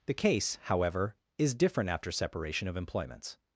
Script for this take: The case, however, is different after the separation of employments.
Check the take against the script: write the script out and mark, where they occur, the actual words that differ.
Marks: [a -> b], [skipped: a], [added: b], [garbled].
The case, however, is different after [skipped: the] separation of employments.